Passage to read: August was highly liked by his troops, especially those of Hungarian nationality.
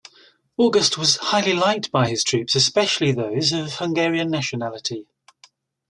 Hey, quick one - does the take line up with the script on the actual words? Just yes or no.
yes